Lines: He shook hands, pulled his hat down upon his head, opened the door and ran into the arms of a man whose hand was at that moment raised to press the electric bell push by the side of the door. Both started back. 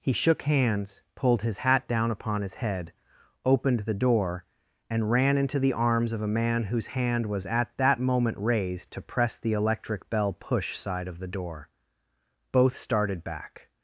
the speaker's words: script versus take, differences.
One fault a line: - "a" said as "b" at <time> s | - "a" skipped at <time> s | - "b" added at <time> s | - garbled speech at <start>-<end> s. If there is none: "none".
- "by the" skipped at 10.8 s